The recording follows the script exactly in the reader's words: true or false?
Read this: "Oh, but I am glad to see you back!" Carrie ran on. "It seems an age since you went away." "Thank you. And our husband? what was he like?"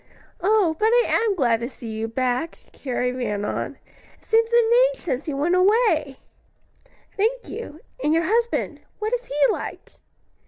false